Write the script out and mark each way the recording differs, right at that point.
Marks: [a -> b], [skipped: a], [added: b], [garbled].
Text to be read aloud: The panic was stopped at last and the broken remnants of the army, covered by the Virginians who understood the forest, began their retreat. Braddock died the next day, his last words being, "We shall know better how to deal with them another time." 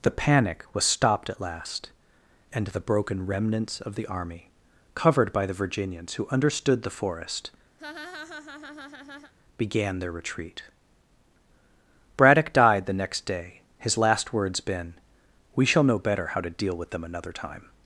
The panic was stopped at last and the broken remnants of the army, covered by the Virginians who understood the forest, began their retreat. Braddock died the next day, his last words [being, -> been] "We shall know better how to deal with them another time."